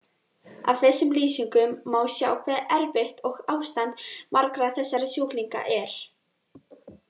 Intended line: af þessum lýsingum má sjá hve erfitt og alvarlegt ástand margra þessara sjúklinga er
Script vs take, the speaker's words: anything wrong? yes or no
yes